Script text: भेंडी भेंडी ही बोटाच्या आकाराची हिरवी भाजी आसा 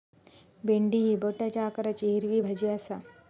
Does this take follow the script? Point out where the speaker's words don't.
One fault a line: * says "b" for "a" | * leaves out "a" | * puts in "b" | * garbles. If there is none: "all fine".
* leaves out "भेंडी"